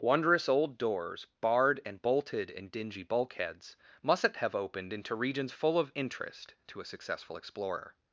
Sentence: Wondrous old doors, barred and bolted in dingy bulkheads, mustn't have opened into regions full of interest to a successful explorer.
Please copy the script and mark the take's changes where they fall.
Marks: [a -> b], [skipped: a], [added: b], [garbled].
Wondrous old doors, barred and bolted in dingy bulkheads, mustn't have opened into regions full of interest to a successful explorer.